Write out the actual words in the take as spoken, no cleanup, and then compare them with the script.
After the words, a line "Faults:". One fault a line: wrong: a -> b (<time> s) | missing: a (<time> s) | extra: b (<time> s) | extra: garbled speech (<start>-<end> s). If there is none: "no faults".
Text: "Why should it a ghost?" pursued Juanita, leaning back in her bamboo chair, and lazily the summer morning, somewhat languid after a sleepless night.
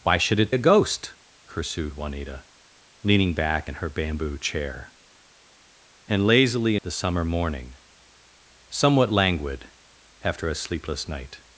"Why should it a ghost?" pursued Juanita, leaning back in her bamboo chair, and lazily the summer morning, somewhat languid after a sleepless night.
Faults:
no faults